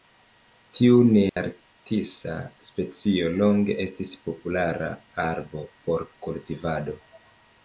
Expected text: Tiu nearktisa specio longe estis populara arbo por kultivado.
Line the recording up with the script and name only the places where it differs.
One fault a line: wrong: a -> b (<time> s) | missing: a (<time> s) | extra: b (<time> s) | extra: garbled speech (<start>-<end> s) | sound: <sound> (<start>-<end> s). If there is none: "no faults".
sound: dropout (1.3-1.4 s)